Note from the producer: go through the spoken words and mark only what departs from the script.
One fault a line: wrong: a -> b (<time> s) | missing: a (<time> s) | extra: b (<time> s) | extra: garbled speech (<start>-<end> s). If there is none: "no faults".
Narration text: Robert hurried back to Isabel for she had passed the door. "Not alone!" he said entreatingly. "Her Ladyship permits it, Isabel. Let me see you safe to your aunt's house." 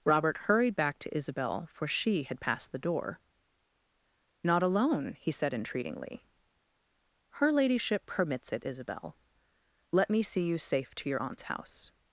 no faults